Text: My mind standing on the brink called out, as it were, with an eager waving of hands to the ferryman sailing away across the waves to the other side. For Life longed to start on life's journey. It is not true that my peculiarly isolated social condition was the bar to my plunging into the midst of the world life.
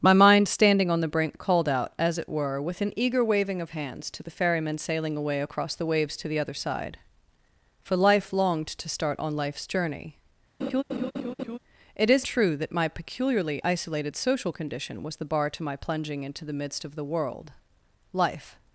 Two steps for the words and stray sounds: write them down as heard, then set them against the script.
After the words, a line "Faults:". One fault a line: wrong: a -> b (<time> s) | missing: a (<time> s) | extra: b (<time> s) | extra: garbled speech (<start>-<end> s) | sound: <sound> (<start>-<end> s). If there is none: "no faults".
My mind standing on the brink called out, as it were, with an eager waving of hands to the ferryman sailing away across the waves to the other side. For Life longed to start on life's journey. It is true that my peculiarly isolated social condition was the bar to my plunging into the midst of the world life.
Faults:
sound: laugh (10.6-11.6 s)
missing: not (12.2 s)